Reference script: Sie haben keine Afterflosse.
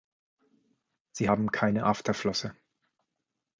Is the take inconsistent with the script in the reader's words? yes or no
no